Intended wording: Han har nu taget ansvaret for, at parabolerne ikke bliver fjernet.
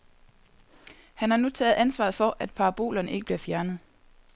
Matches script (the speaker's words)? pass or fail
pass